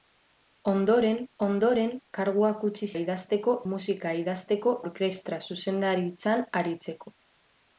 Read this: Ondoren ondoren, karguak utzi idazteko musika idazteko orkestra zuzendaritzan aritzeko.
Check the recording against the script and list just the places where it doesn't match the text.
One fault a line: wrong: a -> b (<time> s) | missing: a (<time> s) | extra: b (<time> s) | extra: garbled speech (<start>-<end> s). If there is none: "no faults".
no faults